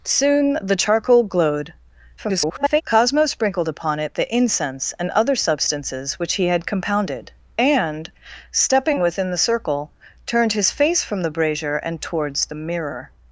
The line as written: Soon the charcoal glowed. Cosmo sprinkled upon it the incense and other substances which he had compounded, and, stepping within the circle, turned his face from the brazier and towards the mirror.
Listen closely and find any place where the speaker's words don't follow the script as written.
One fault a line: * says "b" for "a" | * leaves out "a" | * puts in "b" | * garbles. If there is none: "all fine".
* garbles